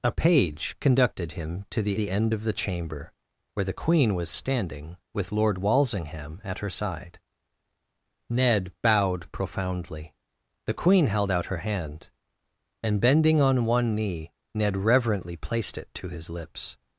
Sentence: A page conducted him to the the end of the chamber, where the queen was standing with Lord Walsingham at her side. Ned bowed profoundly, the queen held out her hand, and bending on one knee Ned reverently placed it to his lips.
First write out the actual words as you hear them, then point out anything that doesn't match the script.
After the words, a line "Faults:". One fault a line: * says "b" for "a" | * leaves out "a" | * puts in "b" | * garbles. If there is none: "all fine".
A page conducted him to the the end of the chamber, where the queen was standing with Lord Walsingham at her side. Ned bowed profoundly, the queen held out her hand, and bending on one knee Ned reverently placed it to his lips.
Faults:
all fine